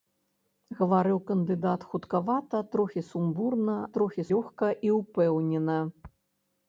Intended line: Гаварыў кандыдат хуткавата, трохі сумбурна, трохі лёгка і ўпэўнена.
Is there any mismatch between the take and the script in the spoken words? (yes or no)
no